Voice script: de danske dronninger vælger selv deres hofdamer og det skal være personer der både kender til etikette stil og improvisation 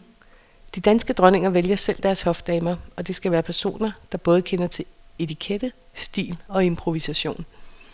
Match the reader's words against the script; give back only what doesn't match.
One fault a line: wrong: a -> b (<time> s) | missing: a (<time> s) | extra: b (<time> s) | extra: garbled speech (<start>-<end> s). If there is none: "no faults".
no faults